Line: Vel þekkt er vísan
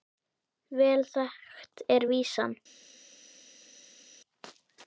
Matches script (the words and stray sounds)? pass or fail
pass